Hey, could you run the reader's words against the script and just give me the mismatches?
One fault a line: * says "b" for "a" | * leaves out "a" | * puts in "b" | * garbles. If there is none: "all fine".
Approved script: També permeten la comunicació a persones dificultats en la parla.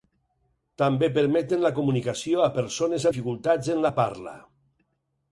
all fine